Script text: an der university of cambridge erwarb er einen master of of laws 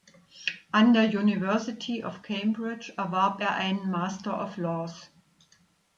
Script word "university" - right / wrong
right